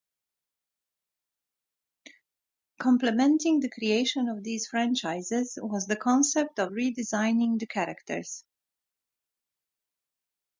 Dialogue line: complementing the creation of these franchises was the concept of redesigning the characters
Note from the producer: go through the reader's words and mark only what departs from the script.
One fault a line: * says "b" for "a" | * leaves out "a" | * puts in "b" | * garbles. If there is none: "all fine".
all fine